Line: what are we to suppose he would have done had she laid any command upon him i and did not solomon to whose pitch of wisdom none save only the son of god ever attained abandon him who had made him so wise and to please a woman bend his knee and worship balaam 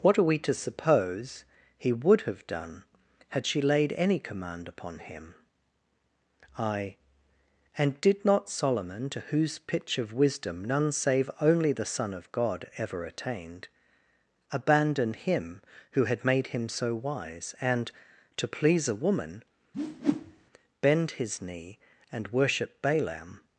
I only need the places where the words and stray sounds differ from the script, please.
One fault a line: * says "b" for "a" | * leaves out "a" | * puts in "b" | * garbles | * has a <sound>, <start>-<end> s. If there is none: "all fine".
* has a whoosh, 19.7-20.5 s